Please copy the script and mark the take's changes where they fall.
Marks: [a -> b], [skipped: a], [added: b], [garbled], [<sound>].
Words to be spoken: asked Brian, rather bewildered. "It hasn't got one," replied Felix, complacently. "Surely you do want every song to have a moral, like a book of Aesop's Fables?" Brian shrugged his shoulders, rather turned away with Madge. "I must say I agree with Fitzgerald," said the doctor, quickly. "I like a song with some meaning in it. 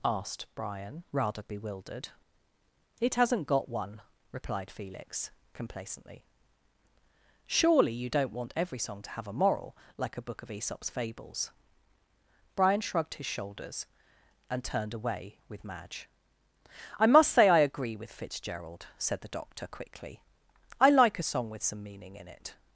asked Brian, rather bewildered. "It hasn't got one," replied Felix, complacently. "Surely you [do -> don't] want every song to have a moral, like a book of Aesop's Fables?" Brian shrugged his shoulders, [rather -> and] turned away with Madge. "I must say I agree with Fitzgerald," said the doctor, quickly. "I like a song with some meaning in it.